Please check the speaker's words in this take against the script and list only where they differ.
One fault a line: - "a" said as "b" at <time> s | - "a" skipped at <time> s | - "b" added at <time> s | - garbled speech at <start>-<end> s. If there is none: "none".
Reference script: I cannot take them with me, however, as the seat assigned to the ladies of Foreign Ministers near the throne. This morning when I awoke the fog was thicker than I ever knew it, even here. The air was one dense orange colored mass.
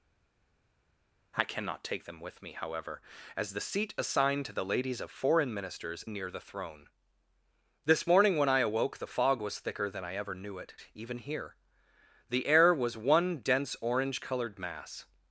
none